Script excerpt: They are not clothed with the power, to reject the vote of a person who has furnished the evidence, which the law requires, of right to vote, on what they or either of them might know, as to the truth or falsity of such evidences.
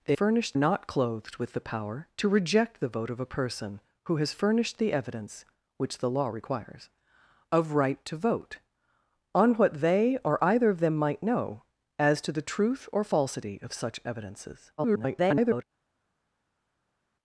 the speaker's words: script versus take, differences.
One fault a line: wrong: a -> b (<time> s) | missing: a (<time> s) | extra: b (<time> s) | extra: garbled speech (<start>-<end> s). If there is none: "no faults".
wrong: are -> furnished (0.1 s)
extra: garbled speech (14.8-15.6 s)